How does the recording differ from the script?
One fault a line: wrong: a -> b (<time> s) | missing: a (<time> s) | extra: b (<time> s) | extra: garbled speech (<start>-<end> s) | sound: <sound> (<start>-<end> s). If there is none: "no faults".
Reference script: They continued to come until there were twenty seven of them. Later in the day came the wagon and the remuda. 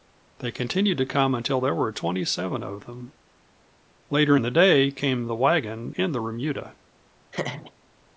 sound: laugh (7.3-7.7 s)